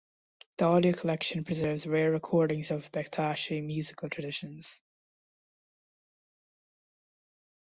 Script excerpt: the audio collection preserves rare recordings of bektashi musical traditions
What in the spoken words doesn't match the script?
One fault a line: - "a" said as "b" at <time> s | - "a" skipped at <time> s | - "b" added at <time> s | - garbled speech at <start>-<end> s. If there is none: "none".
none